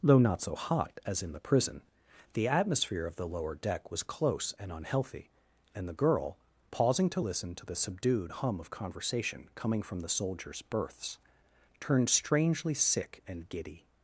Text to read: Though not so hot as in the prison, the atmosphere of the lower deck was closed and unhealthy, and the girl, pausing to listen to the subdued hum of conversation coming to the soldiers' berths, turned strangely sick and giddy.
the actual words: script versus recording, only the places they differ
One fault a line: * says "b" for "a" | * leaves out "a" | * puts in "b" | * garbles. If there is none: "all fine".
* says "close" for "closed"
* says "from" for "to"